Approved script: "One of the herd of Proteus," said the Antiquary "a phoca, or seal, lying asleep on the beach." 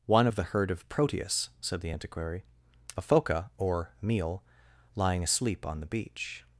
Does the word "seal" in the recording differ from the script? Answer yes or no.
yes